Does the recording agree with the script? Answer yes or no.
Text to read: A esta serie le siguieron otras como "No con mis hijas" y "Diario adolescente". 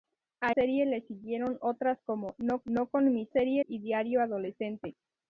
no